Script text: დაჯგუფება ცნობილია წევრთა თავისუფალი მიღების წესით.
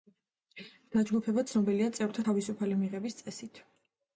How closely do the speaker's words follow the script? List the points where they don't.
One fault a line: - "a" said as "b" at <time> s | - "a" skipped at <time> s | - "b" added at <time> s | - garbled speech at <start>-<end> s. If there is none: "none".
none